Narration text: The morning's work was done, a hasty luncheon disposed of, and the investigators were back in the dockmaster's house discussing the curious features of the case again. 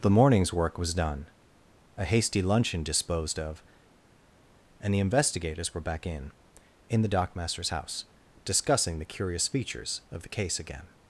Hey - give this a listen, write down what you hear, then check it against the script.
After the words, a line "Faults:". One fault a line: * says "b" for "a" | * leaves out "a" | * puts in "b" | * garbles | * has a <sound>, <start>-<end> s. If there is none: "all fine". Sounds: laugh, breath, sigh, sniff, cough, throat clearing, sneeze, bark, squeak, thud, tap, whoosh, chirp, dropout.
The morning's work was done, a hasty luncheon disposed of, and the investigators were back in in the dockmaster's house discussing the curious features of the case again.
Faults:
* puts in "in"